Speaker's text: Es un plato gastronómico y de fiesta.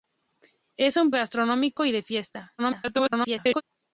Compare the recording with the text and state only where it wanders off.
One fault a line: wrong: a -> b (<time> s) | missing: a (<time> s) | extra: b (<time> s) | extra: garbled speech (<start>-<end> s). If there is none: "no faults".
missing: plato (1.1 s)
extra: garbled speech (2.6-3.6 s)